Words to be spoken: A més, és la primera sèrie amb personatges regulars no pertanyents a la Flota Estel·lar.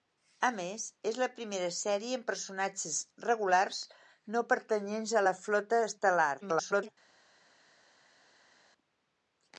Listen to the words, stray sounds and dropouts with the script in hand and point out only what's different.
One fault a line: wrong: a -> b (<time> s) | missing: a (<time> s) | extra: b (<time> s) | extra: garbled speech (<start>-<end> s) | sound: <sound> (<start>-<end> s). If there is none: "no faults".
extra: garbled speech (6.4-6.9 s)